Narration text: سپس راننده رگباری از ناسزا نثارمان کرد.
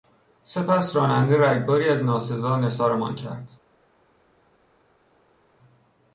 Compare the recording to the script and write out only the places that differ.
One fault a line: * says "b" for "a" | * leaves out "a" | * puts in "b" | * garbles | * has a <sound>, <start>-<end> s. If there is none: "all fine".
all fine